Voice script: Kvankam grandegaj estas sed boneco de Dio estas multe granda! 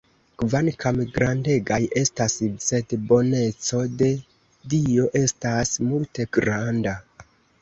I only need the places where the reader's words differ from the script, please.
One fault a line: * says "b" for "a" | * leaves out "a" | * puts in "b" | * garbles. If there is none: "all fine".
all fine